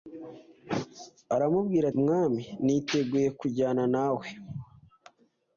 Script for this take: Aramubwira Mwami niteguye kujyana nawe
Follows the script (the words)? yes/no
yes